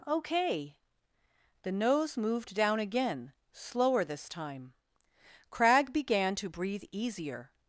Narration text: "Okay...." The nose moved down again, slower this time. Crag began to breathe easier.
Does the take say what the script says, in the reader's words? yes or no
yes